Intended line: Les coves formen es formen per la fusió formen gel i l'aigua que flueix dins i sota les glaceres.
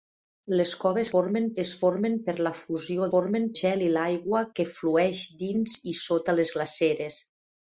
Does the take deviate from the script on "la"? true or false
false